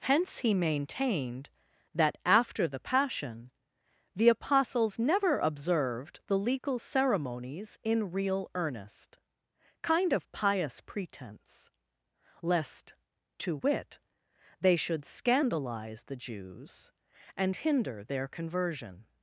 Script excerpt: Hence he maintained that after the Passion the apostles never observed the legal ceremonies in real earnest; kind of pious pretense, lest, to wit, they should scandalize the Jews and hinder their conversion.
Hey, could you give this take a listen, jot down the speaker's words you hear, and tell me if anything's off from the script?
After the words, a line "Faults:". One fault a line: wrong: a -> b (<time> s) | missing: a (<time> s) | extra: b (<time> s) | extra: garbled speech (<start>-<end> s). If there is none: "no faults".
Hence he maintained that after the Passion the apostles never observed the legal ceremonies in real earnest; kind of pious pretense, lest, to wit, they should scandalize the Jews and hinder their conversion.
Faults:
no faults